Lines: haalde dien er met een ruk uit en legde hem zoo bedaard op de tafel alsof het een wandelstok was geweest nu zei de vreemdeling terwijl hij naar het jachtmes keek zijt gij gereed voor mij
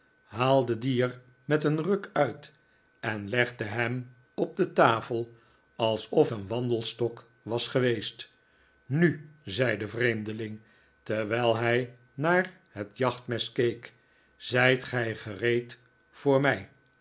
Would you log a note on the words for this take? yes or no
yes